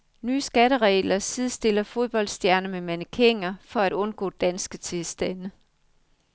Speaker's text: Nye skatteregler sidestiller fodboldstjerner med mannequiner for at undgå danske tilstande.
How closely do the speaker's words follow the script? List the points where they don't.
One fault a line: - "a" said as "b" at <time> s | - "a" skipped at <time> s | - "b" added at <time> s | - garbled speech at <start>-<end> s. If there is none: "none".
none